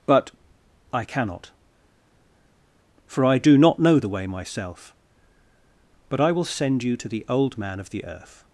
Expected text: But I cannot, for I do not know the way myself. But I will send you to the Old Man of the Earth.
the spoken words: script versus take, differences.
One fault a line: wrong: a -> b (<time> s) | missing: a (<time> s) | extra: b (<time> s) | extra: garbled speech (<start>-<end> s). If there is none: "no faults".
no faults